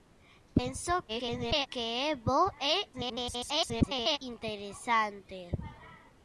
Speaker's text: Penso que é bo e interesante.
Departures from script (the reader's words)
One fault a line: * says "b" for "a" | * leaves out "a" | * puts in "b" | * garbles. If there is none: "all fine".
* garbles
* garbles